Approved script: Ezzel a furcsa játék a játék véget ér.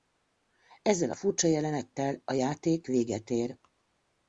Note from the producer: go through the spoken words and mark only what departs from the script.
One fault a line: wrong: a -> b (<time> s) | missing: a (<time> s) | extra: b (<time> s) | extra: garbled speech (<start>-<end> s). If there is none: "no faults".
wrong: játék -> jelenettel (1.5 s)